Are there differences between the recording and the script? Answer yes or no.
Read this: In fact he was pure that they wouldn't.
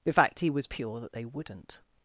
no